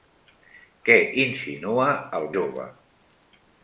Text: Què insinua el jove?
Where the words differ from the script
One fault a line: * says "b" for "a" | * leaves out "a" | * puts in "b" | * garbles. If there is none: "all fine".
all fine